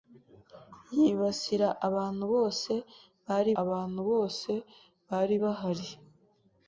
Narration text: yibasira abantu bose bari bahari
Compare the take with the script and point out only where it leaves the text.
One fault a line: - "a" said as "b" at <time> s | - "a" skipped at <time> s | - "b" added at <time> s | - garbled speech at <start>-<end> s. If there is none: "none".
- "abantu bose bari" added at 3.6 s